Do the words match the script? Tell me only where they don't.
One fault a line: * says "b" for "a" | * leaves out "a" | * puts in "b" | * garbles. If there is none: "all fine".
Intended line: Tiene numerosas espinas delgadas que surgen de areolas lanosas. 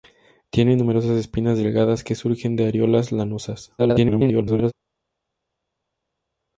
* garbles